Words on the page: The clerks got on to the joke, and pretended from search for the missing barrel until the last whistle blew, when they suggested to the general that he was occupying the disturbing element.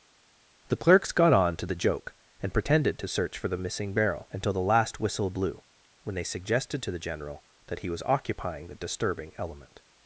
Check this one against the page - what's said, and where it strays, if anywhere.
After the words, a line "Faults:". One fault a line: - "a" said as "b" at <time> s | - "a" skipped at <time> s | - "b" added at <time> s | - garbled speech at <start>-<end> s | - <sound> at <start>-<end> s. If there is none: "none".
The clerks got on to the joke, and pretended to search for the missing barrel until the last whistle blew, when they suggested to the general that he was occupying the disturbing element.
Faults:
- "from" said as "to" at 3.0 s